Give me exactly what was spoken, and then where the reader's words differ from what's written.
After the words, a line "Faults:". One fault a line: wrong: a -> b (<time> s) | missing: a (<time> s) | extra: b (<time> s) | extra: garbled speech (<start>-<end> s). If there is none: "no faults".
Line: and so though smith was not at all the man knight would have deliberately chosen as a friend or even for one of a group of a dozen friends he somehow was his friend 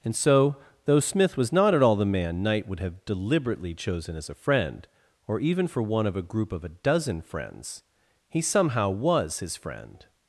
and so though smith was not at all the man knight would have deliberately chosen as a friend or even for one of a group of a dozen friends he somehow was his friend
Faults:
no faults